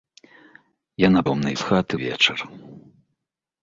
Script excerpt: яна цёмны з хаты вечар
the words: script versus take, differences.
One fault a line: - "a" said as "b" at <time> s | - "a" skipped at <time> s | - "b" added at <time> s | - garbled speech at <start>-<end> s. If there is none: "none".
none